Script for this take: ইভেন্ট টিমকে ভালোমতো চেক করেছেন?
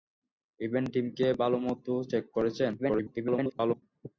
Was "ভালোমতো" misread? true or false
false